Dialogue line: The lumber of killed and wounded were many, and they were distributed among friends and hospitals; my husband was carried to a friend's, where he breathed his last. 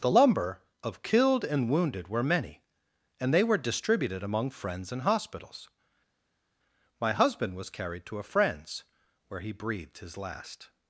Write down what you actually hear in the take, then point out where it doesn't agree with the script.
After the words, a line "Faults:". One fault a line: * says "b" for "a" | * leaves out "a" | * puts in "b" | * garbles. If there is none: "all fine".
The lumber of killed and wounded were many, and they were distributed among friends and hospitals; my husband was carried to a friend's, where he breathed his last.
Faults:
all fine